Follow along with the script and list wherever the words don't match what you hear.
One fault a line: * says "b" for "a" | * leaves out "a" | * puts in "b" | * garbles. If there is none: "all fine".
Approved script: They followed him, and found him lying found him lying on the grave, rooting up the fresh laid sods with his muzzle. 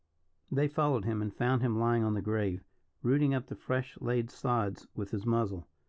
* leaves out "found him lying"